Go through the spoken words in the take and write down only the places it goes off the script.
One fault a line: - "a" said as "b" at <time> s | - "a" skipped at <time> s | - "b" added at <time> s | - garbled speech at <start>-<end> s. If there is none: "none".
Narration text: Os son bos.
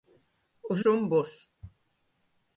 none